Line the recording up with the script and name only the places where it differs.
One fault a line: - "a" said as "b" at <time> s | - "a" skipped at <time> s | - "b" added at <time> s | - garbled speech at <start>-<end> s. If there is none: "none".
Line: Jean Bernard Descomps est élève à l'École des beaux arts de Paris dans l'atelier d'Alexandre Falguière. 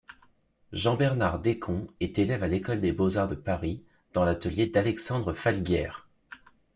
none